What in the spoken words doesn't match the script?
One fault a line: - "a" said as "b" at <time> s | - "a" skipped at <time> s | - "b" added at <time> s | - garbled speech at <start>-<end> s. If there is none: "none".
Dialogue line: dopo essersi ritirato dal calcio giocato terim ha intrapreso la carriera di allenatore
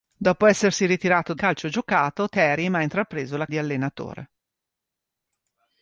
- "dal" skipped at 1.4 s
- "carriera" skipped at 3.5 s